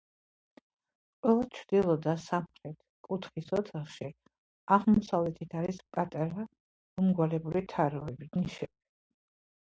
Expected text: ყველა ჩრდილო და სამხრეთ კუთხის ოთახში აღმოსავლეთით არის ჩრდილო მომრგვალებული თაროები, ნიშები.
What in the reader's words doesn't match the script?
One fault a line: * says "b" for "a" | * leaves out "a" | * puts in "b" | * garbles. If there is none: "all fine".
* says "პატარა" for "ჩრდილო"